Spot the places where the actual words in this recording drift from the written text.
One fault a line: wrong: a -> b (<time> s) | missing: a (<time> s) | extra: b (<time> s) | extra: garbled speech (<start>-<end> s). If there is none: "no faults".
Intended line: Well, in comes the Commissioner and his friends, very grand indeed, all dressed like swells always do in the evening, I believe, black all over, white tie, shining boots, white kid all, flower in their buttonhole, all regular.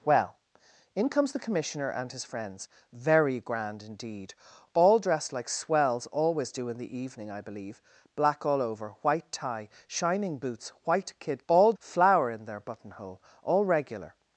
no faults